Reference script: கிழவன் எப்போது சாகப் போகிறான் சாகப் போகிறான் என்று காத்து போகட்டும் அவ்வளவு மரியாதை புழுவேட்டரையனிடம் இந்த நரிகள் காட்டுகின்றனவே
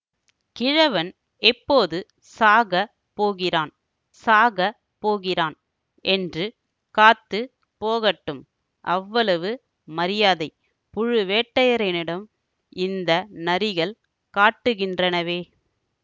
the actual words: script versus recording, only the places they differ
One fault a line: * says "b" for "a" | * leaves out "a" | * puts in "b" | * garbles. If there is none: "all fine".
all fine